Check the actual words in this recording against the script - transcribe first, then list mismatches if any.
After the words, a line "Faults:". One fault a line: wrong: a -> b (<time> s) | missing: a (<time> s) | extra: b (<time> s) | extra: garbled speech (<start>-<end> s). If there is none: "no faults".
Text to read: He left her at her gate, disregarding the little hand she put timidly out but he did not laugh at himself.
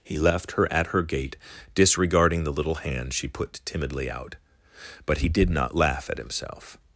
He left her at her gate, disregarding the little hand she put timidly out but he did not laugh at himself.
Faults:
no faults